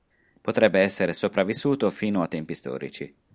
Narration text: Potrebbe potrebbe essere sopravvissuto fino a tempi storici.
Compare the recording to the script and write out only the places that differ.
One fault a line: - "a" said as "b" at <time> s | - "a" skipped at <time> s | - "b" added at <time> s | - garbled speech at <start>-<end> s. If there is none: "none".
- "potrebbe" skipped at 0.8 s